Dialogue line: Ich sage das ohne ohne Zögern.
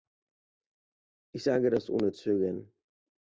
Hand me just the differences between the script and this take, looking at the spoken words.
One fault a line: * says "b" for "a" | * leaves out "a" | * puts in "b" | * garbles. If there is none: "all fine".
* leaves out "ohne"